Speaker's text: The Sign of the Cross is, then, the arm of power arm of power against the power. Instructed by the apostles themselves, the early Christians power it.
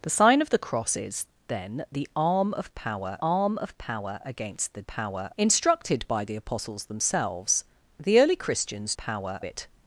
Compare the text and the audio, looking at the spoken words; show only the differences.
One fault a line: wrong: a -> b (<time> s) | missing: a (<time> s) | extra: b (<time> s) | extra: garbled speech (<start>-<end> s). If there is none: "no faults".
no faults